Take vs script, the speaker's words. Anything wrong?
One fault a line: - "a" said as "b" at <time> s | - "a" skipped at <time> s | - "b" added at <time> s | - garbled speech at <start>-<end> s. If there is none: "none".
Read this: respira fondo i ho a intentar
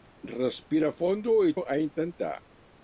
none